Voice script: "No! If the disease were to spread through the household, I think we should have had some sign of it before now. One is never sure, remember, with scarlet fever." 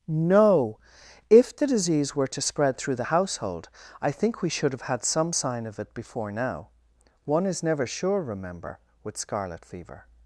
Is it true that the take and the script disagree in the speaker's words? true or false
false